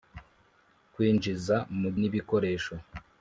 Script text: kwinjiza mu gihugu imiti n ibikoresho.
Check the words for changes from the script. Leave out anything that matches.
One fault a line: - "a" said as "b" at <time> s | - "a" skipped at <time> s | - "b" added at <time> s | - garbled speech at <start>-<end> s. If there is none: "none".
- "gihugu imiti" skipped at 1.9 s